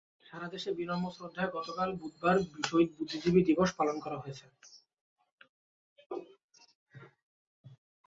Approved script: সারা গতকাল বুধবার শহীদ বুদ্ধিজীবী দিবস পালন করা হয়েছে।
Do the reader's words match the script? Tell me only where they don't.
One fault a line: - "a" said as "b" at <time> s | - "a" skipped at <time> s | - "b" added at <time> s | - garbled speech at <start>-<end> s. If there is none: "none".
- "দেশে বিনম্র শ্রদ্ধায়" added at 0.5 s